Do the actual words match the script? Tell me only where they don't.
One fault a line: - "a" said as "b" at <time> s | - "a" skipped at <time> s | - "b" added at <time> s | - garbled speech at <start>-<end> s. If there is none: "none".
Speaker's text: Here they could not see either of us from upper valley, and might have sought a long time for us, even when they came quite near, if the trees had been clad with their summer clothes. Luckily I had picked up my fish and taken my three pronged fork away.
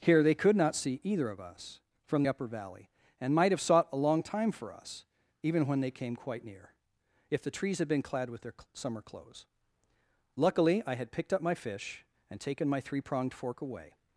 none